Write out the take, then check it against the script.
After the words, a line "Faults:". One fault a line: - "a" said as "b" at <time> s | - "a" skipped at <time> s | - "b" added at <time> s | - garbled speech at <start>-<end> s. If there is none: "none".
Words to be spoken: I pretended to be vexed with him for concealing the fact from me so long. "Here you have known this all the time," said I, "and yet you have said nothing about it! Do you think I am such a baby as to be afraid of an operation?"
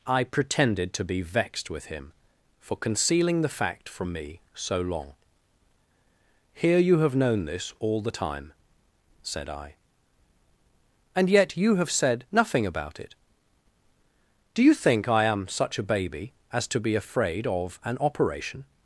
I pretended to be vexed with him for concealing the fact from me so long. "Here you have known this all the time," said I, "and yet you have said nothing about it! Do you think I am such a baby as to be afraid of an operation?"
Faults:
none